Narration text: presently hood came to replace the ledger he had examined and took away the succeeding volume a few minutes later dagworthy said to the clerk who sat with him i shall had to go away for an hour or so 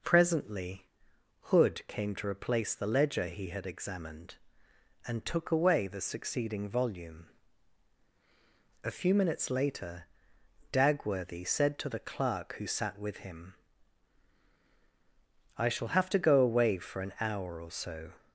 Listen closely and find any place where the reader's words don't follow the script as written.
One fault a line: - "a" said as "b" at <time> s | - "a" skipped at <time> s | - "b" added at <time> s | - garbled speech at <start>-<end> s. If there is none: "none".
- "had" said as "have" at 15.9 s